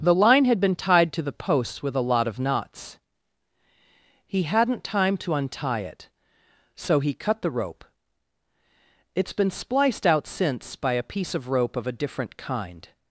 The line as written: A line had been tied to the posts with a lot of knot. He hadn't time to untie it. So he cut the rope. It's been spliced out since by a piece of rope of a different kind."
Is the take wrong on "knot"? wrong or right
wrong